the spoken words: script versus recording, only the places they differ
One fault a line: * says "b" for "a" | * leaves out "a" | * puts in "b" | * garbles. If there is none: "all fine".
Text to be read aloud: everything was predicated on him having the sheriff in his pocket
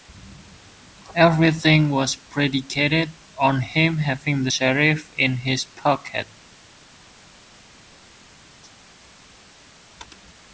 all fine